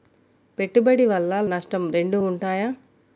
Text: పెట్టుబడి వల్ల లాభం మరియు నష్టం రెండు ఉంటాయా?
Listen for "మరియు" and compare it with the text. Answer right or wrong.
wrong